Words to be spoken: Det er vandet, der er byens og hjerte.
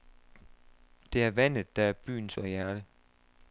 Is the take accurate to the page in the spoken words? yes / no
yes